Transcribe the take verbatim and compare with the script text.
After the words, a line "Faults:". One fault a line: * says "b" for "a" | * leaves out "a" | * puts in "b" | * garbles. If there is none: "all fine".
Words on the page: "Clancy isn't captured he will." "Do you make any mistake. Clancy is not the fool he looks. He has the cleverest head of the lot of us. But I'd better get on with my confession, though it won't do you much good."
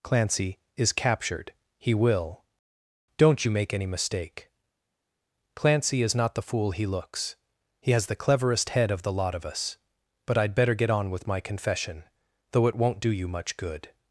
"Clancy is captured he will." "Don't you make any mistake. Clancy is not the fool he looks. He has the cleverest head of the lot of us. But I'd better get on with my confession, though it won't do you much good."
Faults:
* says "is" for "isn't"
* says "Don't" for "Do"